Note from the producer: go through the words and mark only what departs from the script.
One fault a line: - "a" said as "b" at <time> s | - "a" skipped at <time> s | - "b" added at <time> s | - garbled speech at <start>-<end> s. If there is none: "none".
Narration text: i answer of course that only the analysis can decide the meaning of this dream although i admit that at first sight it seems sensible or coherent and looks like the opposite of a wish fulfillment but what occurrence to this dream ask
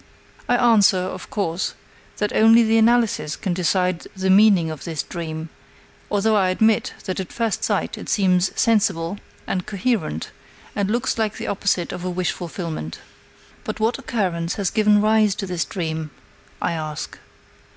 - "or" said as "and" at 9.5 s
- "has given rise" added at 14.6 s
- "i" added at 16.6 s